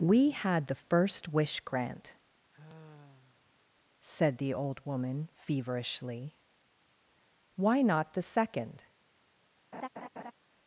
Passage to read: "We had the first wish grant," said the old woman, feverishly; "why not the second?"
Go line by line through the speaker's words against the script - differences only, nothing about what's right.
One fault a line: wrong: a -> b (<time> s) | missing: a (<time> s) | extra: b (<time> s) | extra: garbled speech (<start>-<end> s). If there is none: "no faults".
no faults